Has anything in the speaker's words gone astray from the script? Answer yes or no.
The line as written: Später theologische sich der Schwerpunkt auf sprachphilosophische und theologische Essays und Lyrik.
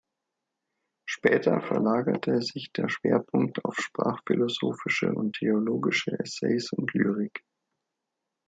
yes